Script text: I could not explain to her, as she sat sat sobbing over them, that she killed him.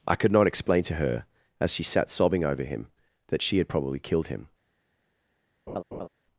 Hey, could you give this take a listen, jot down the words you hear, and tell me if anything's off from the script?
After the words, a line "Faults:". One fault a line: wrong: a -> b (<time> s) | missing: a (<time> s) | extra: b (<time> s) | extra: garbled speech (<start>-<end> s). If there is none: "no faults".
I could not explain to her, as she sat sobbing over him, that she had probably killed him.
Faults:
missing: sat (2.1 s)
wrong: them -> him (2.6 s)
extra: had probably (3.6 s)